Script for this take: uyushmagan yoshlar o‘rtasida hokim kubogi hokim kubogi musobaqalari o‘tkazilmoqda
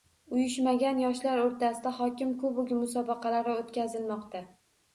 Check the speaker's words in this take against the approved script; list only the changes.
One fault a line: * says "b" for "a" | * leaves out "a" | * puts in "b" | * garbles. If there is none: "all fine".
* leaves out "hokim kubogi"